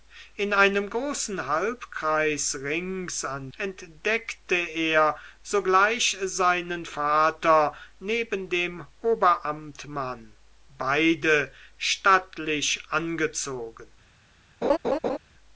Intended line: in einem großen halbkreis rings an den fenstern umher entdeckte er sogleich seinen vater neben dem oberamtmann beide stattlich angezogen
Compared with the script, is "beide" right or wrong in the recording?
right